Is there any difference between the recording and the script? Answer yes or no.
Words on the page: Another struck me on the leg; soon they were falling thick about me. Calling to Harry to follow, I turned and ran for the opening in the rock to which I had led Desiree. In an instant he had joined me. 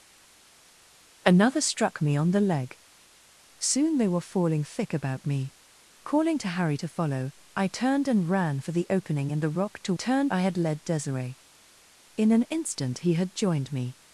yes